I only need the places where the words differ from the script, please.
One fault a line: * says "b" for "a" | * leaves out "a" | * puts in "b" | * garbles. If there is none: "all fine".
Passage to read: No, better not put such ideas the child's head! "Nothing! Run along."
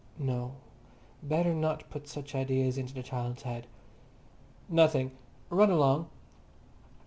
* puts in "into"